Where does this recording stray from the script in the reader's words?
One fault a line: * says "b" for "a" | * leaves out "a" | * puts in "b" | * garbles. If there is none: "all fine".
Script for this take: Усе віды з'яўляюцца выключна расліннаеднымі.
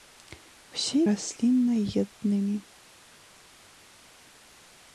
* leaves out "віды з'яўляюцца выключна"